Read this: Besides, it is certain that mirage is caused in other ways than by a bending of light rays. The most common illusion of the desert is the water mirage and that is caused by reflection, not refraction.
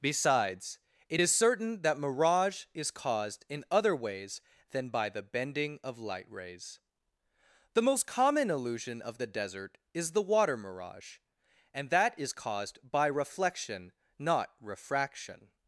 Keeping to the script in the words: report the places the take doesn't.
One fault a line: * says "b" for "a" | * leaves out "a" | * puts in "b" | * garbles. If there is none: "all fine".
* says "the" for "a"